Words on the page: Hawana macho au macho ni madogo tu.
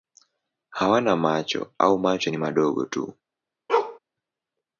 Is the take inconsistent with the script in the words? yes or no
no